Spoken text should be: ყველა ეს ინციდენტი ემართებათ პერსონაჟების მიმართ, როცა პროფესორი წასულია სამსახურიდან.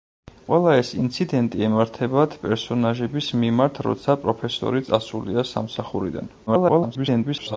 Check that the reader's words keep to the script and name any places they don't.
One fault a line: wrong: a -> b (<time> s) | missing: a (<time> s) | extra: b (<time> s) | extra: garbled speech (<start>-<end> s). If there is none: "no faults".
extra: garbled speech (6.5-7.6 s)